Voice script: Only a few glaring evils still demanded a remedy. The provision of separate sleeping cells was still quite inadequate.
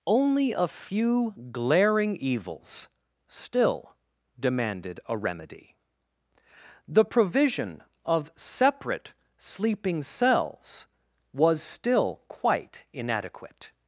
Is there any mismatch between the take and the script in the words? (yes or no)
no